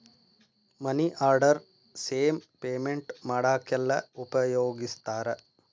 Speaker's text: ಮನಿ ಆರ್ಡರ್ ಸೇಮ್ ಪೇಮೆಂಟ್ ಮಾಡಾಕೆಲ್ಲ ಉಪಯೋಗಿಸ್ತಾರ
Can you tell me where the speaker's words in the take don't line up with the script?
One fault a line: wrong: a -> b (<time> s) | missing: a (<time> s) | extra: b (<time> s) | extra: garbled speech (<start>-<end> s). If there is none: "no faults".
no faults